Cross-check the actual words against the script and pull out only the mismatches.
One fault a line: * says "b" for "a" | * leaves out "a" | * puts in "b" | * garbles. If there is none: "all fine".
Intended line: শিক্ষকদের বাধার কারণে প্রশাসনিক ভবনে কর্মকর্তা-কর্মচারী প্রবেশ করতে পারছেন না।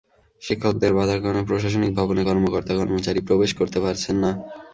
all fine